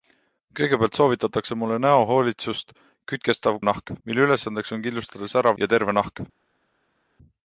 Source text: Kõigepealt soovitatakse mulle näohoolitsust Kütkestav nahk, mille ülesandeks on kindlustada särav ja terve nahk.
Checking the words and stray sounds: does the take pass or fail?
pass